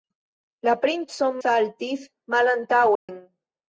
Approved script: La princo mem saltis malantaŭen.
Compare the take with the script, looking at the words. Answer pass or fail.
fail